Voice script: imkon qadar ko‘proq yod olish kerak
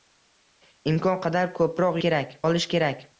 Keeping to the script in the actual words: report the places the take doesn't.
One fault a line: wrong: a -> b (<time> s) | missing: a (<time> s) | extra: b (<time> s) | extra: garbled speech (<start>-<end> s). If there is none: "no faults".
wrong: yod -> kerak (2.1 s)